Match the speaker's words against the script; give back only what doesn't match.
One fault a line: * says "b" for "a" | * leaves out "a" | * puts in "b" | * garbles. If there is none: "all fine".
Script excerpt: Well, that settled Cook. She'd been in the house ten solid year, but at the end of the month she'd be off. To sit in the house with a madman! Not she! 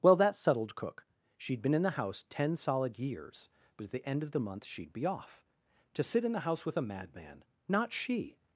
* says "years" for "year"